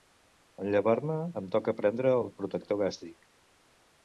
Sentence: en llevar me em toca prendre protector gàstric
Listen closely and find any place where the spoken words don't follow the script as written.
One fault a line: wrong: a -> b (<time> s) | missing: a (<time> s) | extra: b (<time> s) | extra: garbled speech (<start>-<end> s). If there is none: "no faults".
extra: el (2.2 s)